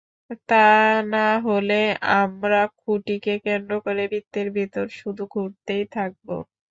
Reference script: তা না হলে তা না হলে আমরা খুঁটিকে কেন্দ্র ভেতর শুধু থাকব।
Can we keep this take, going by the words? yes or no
no